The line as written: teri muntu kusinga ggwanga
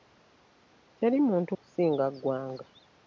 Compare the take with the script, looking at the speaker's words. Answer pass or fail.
pass